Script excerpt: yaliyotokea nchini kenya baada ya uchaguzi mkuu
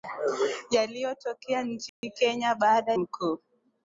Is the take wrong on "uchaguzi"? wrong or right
wrong